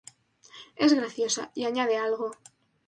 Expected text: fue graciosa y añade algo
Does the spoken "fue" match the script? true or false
false